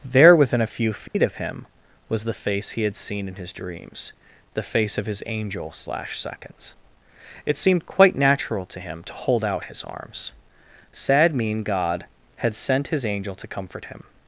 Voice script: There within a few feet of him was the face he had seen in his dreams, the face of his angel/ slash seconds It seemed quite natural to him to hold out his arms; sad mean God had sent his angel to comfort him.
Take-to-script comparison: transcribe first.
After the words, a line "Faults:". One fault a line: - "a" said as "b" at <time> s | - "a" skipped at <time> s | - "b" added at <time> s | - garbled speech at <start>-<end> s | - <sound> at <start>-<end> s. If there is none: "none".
There within a few feet of him was the face he had seen in his dreams, the face of his angel/ slash seconds It seemed quite natural to him to hold out his arms; sad mean God had sent his angel to comfort him.
Faults:
- dropout at 1.1-1.1 s